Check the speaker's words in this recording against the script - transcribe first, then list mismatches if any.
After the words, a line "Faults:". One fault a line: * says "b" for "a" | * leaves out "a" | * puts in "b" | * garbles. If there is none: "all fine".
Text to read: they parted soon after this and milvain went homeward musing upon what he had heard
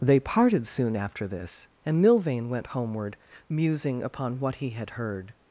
they parted soon after this and milvain went homeward musing upon what he had heard
Faults:
all fine